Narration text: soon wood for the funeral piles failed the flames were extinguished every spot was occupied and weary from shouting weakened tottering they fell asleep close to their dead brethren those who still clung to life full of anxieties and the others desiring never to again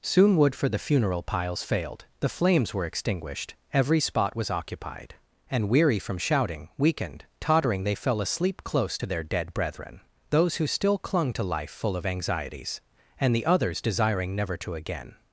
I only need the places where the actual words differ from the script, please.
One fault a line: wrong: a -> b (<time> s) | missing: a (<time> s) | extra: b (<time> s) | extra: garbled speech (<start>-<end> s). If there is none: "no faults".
no faults